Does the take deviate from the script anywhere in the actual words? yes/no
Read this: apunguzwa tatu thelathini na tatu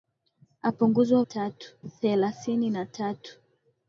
no